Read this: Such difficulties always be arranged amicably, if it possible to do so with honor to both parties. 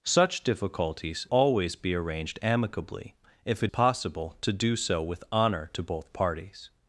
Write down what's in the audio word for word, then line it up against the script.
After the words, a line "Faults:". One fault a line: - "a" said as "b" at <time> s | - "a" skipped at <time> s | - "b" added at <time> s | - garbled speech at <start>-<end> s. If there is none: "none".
Such difficulties always be arranged amicably, if it possible to do so with honor to both parties.
Faults:
none